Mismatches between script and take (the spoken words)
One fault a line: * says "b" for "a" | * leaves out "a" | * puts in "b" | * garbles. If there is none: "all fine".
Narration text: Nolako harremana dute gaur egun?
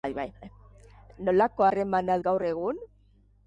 * leaves out "dute"